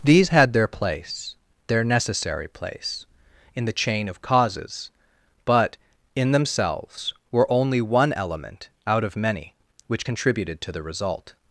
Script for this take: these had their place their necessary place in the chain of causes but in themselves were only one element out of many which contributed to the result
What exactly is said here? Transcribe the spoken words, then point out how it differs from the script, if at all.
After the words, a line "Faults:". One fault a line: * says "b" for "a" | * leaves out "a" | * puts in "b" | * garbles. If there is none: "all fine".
these had their place their necessary place in the chain of causes but in themselves were only one element out of many which contributed to the result
Faults:
all fine